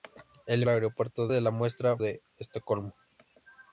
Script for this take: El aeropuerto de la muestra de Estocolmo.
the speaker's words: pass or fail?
pass